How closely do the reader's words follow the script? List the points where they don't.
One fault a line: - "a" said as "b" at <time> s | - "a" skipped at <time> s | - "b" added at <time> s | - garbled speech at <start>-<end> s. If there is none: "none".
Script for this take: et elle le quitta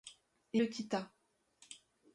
- "elle" skipped at 0.6 s